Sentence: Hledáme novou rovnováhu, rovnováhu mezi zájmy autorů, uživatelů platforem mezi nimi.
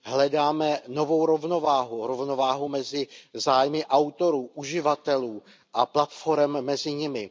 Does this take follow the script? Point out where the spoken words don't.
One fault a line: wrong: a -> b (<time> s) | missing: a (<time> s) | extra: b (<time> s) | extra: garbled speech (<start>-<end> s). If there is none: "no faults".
extra: a (5.7 s)